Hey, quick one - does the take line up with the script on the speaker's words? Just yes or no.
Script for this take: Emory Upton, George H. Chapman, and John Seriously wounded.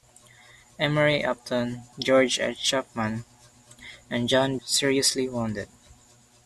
yes